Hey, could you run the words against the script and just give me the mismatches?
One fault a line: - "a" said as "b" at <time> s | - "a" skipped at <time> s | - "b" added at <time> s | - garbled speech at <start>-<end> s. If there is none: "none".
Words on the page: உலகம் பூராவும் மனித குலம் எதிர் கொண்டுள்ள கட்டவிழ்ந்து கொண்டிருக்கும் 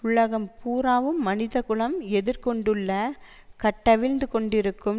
none